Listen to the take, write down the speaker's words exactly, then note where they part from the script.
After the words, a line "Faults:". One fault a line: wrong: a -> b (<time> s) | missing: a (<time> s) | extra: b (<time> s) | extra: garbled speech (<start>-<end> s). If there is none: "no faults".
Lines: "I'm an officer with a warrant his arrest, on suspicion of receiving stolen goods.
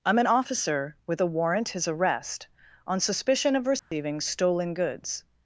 "I'm an officer with a warrant his arrest, on suspicion of receiving stolen goods.
Faults:
no faults